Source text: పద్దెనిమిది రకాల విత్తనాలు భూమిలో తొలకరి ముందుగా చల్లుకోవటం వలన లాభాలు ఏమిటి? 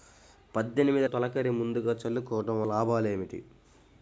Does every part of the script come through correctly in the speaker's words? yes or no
no